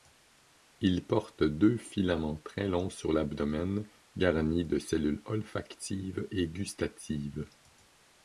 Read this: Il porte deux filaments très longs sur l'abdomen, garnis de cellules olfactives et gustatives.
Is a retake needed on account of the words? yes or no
no